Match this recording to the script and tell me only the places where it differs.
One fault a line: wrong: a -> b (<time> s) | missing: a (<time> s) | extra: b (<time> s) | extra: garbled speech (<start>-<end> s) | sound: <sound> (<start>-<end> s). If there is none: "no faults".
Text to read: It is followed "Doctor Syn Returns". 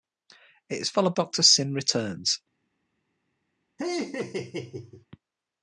sound: laugh (3.8-5.1 s)